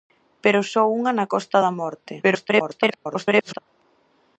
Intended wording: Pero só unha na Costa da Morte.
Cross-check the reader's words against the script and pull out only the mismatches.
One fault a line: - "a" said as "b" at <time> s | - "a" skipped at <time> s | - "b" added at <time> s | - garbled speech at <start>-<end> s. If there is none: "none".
- garbled speech at 2.2-3.6 s